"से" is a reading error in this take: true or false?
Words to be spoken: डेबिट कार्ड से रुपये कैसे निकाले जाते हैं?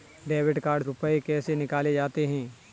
true